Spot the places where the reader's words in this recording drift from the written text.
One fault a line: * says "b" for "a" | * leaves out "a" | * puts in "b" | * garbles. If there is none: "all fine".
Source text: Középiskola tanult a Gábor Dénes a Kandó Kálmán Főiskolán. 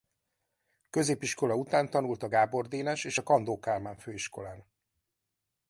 * puts in "után"
* puts in "és"